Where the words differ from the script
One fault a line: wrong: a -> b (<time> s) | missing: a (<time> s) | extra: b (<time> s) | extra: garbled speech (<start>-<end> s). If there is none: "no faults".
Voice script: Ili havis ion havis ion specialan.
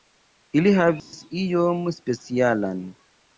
missing: havis ion (1.9 s)